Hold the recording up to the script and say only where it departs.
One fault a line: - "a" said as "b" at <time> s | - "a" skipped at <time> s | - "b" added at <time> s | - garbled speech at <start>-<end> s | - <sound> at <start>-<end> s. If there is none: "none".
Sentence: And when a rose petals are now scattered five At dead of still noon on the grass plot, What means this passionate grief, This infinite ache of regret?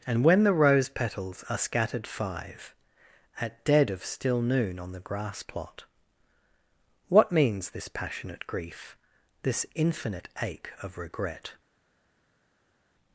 - "a" said as "the" at 0.4 s
- "now" skipped at 1.6 s